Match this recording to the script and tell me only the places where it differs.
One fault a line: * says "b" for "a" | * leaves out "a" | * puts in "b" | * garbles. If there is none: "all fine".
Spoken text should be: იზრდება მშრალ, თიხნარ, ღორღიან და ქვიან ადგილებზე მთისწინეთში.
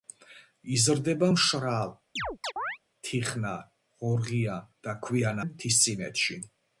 * leaves out "ადგილებზე"